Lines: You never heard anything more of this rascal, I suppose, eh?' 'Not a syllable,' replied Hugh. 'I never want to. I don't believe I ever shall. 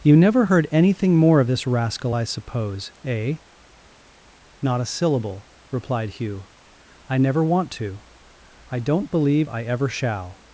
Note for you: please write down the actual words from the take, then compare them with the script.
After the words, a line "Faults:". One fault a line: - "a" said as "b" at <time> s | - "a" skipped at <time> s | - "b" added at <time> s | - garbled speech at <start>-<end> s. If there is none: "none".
You never heard anything more of this rascal, I suppose, eh?' 'Not a syllable,' replied Hugh. 'I never want to. I don't believe I ever shall.
Faults:
none